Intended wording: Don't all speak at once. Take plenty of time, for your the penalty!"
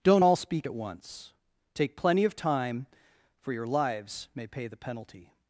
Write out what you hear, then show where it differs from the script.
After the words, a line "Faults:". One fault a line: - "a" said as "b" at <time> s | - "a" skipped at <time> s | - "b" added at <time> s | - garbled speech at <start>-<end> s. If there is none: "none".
Don't all speak at once. Take plenty of time, for your lives may pay the penalty!"
Faults:
- "lives may pay" added at 3.7 s